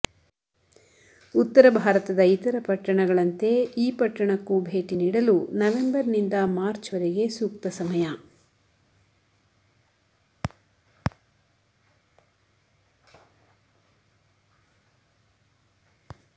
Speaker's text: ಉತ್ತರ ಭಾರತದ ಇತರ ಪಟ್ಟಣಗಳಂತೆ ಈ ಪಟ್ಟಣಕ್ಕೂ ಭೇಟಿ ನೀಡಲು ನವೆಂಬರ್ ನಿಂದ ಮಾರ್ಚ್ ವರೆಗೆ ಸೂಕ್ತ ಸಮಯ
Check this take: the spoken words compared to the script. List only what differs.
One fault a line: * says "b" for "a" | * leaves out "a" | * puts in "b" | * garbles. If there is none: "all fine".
all fine